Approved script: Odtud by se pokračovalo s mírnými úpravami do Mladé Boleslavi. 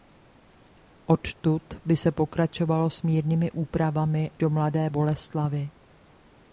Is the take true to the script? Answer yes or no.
yes